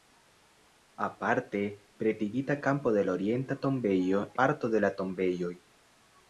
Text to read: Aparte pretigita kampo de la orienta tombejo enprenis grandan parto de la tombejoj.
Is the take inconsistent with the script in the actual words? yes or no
yes